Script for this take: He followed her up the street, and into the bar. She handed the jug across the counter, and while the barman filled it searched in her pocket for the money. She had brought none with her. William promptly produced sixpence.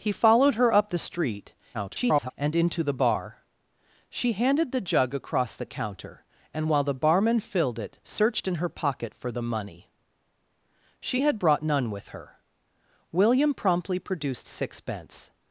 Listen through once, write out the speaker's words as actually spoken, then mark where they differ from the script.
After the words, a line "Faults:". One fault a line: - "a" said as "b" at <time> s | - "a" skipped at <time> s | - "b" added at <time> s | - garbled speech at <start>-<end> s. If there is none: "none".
He followed her up the street, [garbled] and into the bar. She handed the jug across the counter, and while the barman filled it searched in her pocket for the money. She had brought none with her. William promptly produced sixpence.
Faults:
- garbled speech at 1.7-2.3 s